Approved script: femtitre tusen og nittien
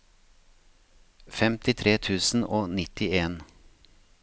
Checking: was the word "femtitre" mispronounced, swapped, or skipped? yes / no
no